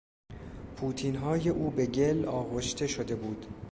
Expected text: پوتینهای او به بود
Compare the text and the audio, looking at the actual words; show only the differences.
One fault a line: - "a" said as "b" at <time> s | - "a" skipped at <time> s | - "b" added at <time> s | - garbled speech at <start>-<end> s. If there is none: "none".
- "گل آغشته شده" added at 1.9 s